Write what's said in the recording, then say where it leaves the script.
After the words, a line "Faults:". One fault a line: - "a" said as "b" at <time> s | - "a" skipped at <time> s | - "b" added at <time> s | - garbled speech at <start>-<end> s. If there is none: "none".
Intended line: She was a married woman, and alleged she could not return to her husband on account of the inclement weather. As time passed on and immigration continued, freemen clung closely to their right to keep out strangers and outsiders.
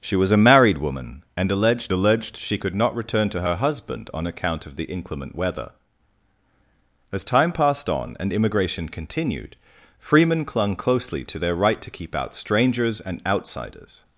She was a married woman, and alleged alleged she could not return to her husband on account of the inclement weather. As time passed on and immigration continued, freemen clung closely to their right to keep out strangers and outsiders.
Faults:
- "alleged" added at 1.9 s